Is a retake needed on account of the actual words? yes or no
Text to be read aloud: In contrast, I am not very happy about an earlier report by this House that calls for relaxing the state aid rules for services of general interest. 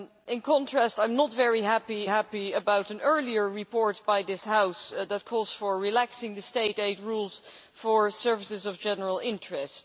yes